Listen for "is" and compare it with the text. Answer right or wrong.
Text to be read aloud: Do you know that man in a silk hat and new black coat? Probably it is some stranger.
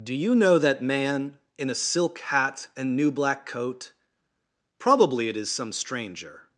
right